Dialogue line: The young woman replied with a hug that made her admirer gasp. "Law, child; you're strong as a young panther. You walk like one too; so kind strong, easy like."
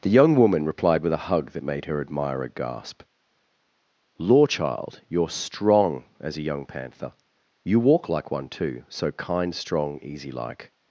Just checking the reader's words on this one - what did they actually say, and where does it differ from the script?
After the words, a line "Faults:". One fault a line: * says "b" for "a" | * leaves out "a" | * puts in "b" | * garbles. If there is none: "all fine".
The young woman replied with a hug that made her admirer gasp. "Law, child; you're strong as a young panther. You walk like one too; so kind strong, easy like."
Faults:
all fine